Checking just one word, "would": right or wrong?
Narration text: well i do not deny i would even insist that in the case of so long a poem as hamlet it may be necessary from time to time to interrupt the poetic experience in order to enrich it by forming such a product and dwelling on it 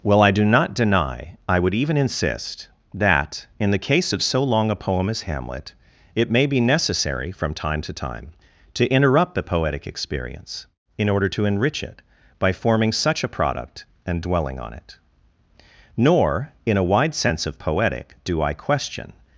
right